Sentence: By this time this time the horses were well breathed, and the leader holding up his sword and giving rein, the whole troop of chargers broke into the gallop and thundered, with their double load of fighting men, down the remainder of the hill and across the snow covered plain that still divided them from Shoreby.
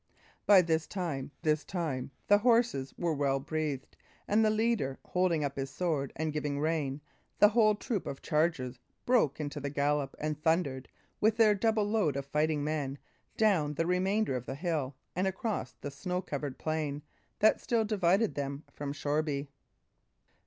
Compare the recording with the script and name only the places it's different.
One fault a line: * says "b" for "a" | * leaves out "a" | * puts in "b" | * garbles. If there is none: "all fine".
all fine